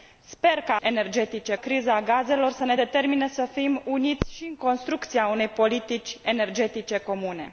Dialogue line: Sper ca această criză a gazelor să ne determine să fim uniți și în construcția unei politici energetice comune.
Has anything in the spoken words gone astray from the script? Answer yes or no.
yes